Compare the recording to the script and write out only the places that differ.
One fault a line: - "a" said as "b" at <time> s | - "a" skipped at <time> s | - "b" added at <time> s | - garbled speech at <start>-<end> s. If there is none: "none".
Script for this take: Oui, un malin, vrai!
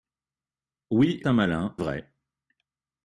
none